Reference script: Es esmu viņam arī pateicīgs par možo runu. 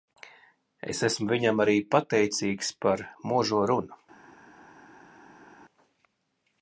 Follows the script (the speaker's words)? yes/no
yes